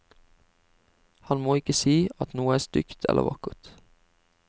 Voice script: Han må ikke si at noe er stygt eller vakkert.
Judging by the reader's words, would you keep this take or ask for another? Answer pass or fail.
pass